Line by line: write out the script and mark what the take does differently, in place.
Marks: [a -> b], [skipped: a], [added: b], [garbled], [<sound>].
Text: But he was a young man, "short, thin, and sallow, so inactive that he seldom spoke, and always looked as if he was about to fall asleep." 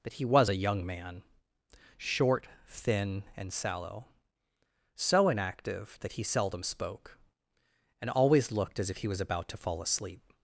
But he was a young man, "short, thin, and sallow, so inactive that he seldom spoke, and always looked as if he was about to fall asleep."